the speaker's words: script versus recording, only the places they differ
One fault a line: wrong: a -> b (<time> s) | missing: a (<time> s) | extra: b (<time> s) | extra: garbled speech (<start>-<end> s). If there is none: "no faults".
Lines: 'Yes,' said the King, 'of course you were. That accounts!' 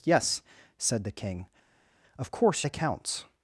missing: you were That (2.7 s)